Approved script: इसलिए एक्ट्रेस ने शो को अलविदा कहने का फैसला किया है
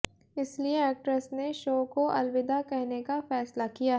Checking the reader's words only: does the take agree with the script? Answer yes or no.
yes